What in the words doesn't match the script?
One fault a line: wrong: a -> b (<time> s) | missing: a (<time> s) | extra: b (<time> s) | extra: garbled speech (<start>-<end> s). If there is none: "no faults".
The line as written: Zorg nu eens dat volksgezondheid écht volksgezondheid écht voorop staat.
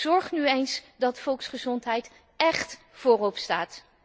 missing: volksgezondheid écht (2.8 s)